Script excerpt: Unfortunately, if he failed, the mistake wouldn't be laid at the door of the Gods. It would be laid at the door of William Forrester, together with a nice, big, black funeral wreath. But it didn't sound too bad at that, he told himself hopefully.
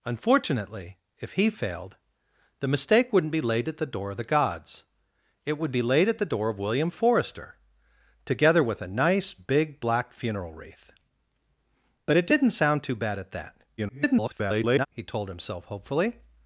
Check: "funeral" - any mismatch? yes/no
no